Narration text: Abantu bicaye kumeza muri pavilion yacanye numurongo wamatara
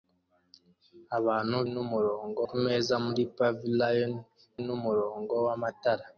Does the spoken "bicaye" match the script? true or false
false